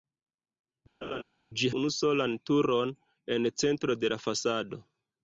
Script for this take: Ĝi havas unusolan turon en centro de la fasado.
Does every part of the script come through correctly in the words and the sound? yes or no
no